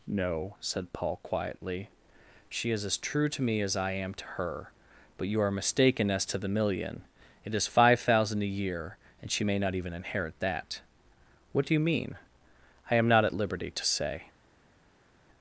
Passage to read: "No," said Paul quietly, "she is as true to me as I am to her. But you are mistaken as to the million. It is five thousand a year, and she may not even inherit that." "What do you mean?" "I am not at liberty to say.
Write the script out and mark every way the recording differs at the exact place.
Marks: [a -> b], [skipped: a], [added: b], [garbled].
"No," said Paul quietly, "she is as true to me as I am to her. But you are mistaken as to the million. It is five thousand a year, and she may not even inherit that." "What do you mean?" "I am not at liberty to say.